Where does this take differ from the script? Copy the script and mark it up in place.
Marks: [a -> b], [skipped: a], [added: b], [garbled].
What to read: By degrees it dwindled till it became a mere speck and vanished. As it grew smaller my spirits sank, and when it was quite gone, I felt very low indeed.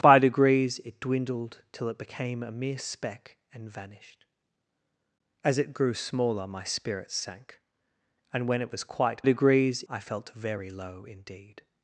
By degrees it dwindled till it became a mere speck and vanished. As it grew smaller my spirits sank, and when it was quite [gone, -> degrees] I felt very low indeed.